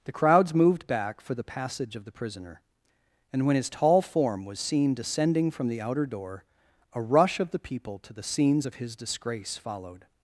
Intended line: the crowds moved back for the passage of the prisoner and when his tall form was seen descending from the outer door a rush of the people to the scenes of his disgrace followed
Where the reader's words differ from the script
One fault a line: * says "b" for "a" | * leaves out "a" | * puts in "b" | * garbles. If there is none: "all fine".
all fine